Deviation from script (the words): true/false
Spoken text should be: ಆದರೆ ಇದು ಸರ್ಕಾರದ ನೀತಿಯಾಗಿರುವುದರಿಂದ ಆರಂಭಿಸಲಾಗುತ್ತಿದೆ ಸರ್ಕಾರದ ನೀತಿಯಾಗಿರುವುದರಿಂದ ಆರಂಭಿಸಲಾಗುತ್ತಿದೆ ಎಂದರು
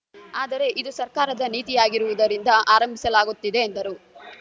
true